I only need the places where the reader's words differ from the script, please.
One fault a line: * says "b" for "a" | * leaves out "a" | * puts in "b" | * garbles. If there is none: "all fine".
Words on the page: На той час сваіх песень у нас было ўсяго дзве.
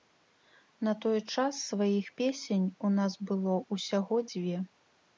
all fine